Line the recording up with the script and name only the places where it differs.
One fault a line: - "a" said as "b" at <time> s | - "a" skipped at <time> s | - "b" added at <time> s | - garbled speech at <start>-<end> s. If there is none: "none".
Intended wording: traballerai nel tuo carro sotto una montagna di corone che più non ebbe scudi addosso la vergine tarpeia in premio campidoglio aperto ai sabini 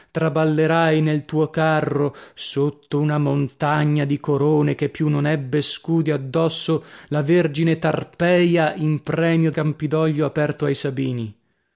none